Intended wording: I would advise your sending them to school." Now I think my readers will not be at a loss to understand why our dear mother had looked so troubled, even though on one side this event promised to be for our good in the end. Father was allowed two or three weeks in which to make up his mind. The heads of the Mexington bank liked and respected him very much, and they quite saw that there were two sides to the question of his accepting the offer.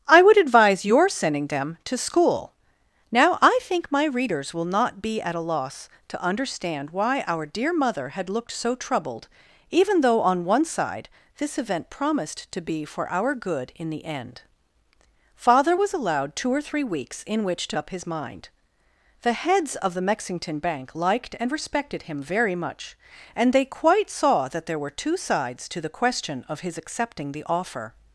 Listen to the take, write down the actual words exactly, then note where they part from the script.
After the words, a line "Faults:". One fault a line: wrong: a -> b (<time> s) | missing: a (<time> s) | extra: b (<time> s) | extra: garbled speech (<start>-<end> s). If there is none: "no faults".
I would advise your sending them to school." Now I think my readers will not be at a loss to understand why our dear mother had looked so troubled, even though on one side this event promised to be for our good in the end. Father was allowed two or three weeks in which to up his mind. The heads of the Mexington bank liked and respected him very much, and they quite saw that there were two sides to the question of his accepting the offer.
Faults:
missing: make (17.8 s)